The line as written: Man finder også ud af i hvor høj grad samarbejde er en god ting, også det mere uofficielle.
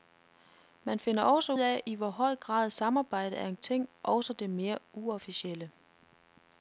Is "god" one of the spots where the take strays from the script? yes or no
yes